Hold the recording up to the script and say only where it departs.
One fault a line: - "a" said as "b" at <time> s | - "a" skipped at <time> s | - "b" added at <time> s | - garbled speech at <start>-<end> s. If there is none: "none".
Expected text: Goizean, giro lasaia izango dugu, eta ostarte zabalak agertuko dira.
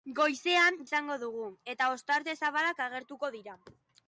- "giro lasaia" skipped at 0.8 s